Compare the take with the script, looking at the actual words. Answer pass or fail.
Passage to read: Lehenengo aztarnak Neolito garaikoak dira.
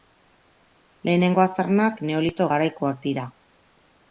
pass